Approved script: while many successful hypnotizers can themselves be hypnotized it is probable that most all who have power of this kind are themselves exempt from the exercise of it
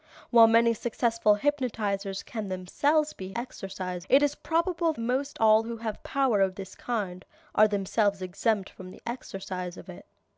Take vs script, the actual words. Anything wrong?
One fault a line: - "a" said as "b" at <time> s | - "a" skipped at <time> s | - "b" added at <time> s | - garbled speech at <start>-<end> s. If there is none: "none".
- "hypnotized" said as "exercise" at 3.3 s
- "that" skipped at 4.9 s